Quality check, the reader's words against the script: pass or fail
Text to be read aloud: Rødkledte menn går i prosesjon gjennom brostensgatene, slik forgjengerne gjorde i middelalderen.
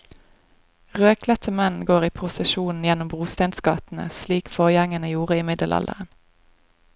pass